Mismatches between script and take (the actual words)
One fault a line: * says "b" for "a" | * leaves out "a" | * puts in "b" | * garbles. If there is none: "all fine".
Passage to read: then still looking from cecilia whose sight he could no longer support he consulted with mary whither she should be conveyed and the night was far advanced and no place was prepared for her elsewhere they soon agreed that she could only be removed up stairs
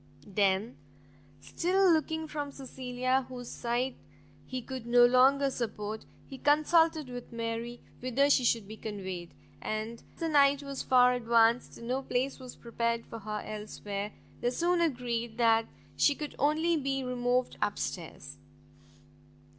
all fine